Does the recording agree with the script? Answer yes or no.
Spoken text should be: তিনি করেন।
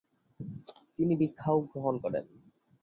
no